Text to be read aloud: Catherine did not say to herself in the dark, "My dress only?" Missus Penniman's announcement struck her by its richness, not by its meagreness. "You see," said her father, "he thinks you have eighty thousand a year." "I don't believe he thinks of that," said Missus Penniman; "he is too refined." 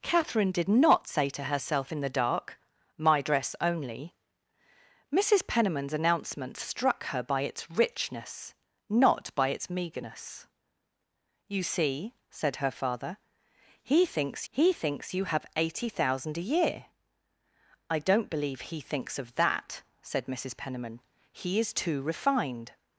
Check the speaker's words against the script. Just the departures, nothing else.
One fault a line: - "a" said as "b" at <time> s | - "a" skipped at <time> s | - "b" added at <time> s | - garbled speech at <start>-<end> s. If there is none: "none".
- "he thinks" added at 14.5 s